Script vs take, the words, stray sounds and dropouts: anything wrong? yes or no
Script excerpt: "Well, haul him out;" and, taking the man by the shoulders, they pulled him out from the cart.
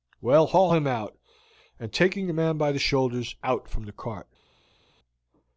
yes